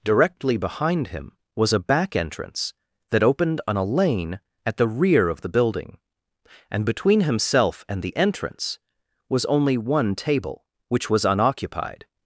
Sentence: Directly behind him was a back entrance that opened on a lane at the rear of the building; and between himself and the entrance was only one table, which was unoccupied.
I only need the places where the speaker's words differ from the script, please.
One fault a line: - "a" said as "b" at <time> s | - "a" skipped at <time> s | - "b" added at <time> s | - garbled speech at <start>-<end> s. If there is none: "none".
none